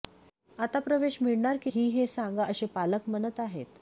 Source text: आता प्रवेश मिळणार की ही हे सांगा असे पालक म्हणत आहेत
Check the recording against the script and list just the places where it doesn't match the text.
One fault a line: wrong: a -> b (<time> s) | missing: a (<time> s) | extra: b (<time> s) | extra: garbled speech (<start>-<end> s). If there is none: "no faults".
no faults